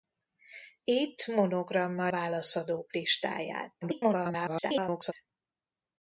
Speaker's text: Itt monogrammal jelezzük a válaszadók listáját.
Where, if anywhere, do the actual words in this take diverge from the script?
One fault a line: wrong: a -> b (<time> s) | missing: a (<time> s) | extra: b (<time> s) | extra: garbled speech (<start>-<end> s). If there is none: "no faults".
missing: jelezzük a (2.1 s)
extra: garbled speech (3.8-5.1 s)